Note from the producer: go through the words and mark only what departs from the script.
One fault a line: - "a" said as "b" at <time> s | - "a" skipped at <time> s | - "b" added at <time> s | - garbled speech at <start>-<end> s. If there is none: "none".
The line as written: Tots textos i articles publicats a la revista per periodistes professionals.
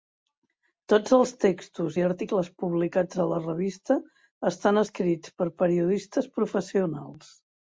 - "els" added at 1.2 s
- "estan escrits" added at 4.5 s